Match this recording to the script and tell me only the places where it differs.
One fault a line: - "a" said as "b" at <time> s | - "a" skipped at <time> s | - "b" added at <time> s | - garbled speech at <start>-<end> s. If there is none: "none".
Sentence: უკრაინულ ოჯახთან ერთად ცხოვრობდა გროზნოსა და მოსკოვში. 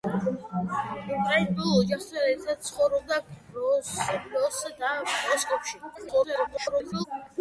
- garbled speech at 5.9-7.0 s